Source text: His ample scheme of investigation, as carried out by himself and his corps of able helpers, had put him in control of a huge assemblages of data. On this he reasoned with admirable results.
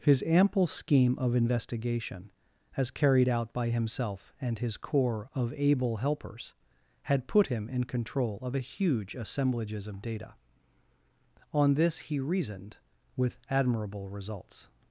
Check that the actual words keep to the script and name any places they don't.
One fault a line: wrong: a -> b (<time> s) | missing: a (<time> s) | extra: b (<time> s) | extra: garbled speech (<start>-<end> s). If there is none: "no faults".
no faults